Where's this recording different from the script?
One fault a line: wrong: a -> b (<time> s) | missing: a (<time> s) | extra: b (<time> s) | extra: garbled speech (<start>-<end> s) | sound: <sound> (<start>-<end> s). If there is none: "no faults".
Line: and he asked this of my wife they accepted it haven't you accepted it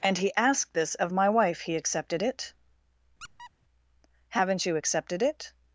wrong: they -> he (1.6 s)
sound: squeak (3.2-3.5 s)